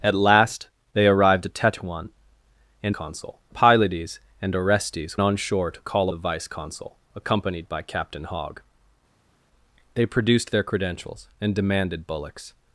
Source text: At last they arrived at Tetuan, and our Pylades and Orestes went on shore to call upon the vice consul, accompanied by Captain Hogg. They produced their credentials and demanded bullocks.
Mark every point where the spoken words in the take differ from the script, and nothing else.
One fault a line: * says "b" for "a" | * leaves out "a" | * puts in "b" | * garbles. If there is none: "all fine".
* says "consul" for "our"
* leaves out "went"
* leaves out "upon"